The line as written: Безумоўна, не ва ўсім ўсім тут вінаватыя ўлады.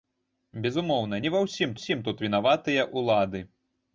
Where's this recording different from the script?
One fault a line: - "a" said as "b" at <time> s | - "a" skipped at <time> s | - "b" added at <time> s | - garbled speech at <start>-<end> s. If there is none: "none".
none